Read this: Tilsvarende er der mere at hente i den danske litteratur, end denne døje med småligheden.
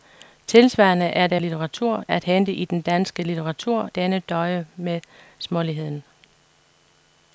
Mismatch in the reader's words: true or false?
true